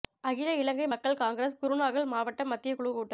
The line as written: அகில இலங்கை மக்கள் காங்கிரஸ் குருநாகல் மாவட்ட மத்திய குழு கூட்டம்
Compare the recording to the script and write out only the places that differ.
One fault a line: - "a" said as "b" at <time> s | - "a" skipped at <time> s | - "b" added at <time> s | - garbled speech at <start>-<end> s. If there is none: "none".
none